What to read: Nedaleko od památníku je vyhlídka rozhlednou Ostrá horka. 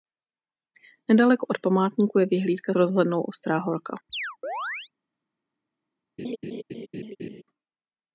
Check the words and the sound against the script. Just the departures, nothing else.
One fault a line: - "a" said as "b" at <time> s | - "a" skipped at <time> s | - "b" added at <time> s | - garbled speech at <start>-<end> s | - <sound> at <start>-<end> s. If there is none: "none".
- chirp at 4.1-4.9 s
- laugh at 6.2-7.4 s